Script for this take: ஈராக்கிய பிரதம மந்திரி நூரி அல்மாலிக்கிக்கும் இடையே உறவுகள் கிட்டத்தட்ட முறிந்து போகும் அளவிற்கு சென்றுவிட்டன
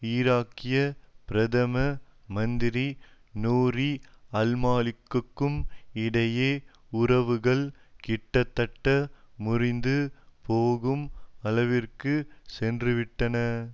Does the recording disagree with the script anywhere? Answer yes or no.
no